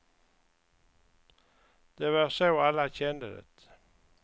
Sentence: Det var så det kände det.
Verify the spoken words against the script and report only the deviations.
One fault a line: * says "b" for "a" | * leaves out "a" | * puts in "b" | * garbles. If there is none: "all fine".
* says "alla" for "det"